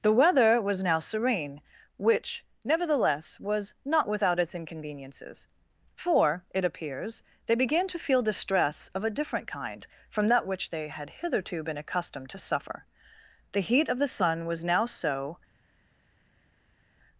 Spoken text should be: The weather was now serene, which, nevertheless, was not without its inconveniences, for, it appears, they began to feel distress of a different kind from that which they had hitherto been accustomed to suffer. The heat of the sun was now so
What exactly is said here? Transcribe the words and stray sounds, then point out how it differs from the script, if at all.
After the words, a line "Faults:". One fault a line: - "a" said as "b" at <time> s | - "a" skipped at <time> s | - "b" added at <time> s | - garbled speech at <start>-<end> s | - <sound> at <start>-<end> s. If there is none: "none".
The weather was now serene, which, nevertheless, was not without its inconveniences, for, it appears, they began to feel distress of a different kind from that which they had hitherto been accustomed to suffer. The heat of the sun was now so
Faults:
none